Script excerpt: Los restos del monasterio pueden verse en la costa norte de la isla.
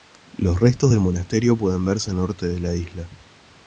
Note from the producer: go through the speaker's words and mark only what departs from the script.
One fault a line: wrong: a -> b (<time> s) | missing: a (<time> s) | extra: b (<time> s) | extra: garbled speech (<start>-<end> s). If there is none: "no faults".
missing: la costa (2.2 s)